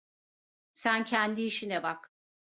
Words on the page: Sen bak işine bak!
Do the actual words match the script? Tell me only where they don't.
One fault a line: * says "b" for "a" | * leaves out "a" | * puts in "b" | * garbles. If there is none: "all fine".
* says "kendi" for "bak"